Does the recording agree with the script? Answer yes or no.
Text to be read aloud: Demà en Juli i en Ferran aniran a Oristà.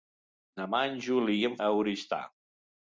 no